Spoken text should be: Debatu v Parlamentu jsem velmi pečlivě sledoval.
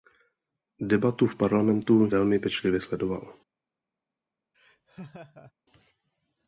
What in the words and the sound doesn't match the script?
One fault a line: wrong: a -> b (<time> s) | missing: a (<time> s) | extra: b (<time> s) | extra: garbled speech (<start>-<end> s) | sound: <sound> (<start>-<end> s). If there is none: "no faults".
missing: jsem (2.1 s)
sound: laugh (4.5-5.5 s)